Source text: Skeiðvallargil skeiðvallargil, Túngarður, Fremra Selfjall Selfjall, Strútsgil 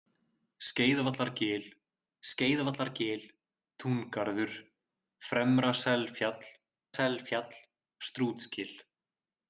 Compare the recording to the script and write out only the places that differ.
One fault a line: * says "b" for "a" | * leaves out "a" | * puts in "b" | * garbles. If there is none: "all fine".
all fine